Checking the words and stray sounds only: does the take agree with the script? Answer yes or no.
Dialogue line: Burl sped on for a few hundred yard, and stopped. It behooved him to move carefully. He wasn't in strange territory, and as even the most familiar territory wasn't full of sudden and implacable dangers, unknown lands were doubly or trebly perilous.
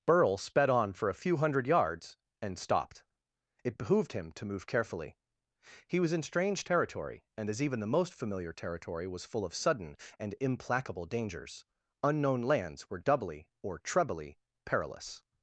no